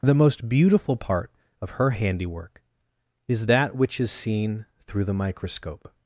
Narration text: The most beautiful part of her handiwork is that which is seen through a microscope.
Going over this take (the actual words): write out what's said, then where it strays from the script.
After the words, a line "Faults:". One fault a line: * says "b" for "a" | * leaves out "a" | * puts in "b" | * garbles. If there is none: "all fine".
The most beautiful part of her handiwork is that which is seen through the microscope.
Faults:
* says "the" for "a"